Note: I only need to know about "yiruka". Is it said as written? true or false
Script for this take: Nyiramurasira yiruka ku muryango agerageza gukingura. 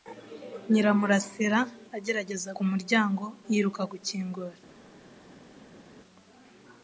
false